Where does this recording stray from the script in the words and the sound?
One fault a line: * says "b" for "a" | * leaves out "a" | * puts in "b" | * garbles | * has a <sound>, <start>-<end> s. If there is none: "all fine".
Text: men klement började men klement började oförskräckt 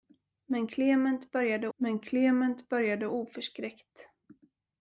all fine